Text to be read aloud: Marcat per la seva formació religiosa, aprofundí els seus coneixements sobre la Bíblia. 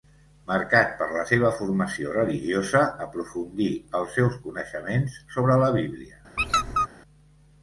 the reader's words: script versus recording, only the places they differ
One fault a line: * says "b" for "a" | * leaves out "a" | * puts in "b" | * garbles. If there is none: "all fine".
all fine